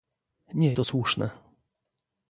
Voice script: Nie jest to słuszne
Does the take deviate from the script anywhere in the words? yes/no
yes